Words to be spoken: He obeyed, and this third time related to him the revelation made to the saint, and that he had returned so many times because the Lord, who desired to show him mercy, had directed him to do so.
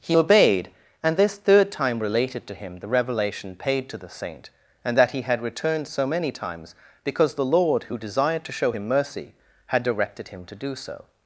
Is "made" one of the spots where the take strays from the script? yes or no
yes